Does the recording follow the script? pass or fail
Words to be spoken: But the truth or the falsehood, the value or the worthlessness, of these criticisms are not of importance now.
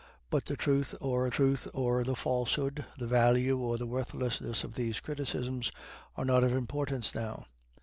fail